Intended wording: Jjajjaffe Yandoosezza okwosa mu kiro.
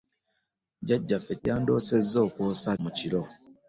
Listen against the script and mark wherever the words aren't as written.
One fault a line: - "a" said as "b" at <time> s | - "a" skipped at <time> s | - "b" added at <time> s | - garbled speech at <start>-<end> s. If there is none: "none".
none